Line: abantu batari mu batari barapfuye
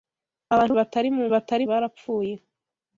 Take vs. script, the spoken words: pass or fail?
pass